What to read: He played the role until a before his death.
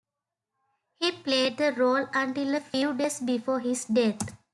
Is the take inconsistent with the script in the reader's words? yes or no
yes